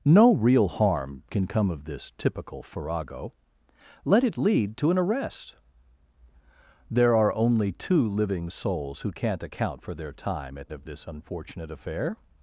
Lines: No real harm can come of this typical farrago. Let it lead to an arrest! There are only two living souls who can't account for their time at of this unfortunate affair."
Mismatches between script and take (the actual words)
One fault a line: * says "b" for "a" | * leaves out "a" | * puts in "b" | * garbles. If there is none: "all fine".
all fine